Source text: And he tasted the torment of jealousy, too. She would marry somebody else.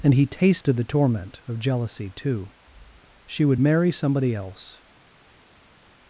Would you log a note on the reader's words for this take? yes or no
no